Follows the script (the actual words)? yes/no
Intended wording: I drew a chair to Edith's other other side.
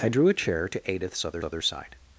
yes